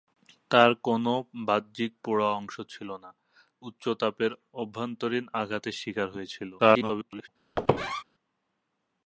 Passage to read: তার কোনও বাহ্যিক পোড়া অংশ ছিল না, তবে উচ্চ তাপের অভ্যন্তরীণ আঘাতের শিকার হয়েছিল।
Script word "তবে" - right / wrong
wrong